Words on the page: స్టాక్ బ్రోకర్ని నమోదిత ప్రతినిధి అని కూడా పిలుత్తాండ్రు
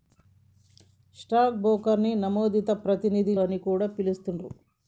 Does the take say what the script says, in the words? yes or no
yes